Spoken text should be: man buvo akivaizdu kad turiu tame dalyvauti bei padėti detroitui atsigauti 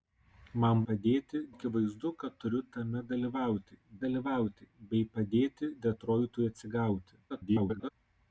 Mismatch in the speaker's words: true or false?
true